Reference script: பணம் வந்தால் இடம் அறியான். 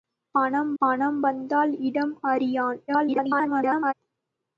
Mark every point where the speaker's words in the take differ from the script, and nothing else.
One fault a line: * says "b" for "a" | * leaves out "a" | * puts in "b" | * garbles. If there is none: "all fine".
* puts in "பணம்"
* garbles